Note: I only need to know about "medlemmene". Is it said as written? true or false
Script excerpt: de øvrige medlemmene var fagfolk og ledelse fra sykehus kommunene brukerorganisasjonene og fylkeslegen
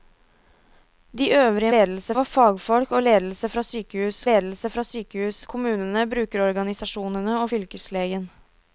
false